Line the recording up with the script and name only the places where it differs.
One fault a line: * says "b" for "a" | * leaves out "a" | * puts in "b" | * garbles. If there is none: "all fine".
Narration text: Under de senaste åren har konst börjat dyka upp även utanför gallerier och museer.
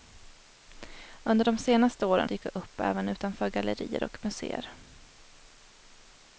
* leaves out "har konst börjat"